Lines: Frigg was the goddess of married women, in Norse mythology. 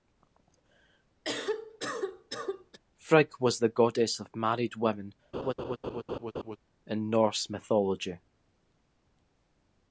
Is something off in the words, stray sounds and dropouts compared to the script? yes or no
yes